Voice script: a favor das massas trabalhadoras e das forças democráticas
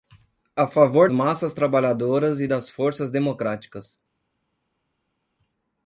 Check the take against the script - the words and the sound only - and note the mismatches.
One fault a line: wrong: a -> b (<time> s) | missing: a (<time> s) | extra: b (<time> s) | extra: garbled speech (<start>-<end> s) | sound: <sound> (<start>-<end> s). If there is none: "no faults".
missing: das (1.1 s)